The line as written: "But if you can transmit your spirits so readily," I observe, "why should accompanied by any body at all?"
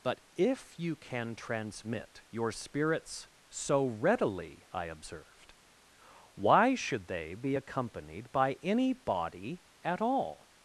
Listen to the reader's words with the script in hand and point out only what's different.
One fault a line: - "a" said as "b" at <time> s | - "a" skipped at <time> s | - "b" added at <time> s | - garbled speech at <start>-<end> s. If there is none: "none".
- "observe" said as "observed" at 4.8 s
- "they be" added at 7.1 s